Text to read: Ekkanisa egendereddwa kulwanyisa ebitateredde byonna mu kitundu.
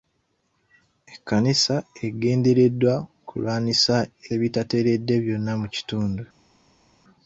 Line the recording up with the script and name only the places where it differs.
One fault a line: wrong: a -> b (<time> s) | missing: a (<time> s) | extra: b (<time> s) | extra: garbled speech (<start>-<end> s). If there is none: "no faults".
no faults